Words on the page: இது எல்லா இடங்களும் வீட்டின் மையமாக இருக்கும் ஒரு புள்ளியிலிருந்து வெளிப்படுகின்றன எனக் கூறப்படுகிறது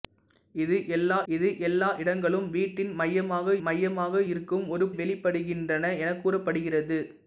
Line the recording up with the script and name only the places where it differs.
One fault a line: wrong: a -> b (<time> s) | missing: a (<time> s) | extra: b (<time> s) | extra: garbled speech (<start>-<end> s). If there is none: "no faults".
extra: இது எல்லா (1.3 s)
extra: மையமாக (3.6 s)
missing: புள்ளியிலிருந்து (4.9 s)